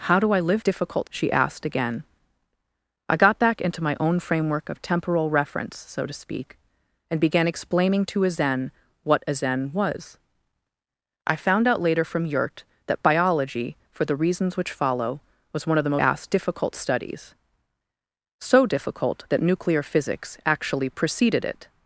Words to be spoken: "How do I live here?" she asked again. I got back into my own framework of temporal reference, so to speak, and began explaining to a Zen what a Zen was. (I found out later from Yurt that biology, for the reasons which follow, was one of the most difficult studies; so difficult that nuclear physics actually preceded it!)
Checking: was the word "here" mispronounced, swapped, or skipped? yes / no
yes